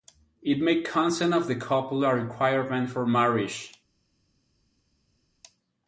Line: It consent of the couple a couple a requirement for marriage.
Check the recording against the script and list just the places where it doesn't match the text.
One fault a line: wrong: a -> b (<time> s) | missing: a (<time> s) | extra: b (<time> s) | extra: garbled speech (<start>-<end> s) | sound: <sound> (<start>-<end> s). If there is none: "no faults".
extra: made (0.6 s)
missing: couple a (2.1 s)